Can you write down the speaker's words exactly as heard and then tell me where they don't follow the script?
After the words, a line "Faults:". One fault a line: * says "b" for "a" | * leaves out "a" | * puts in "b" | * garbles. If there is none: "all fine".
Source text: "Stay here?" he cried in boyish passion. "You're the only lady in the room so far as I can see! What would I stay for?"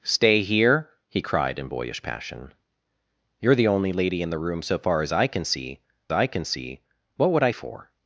"Stay here?" he cried in boyish passion. "You're the only lady in the room so far as I can see I can see! What would I for?"
Faults:
* puts in "I can see"
* leaves out "stay"